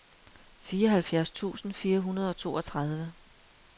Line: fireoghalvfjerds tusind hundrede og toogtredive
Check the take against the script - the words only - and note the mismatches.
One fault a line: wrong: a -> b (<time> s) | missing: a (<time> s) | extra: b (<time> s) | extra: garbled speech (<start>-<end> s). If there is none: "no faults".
extra: fire (1.7 s)